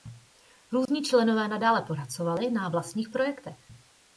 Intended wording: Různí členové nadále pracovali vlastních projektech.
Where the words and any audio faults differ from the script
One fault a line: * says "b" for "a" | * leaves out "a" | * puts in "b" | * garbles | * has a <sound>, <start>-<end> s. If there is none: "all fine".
* has a dropout, 0.9-0.9 s
* puts in "na"